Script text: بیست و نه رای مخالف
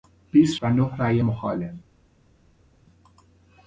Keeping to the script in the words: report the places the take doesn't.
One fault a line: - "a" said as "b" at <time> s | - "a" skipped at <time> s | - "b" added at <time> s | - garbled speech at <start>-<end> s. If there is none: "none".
none